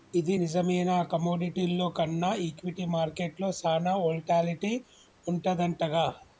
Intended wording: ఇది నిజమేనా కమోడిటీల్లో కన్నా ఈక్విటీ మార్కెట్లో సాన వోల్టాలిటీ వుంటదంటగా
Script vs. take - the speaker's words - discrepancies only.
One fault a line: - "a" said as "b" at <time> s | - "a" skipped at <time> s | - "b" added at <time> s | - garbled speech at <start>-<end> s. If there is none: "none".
none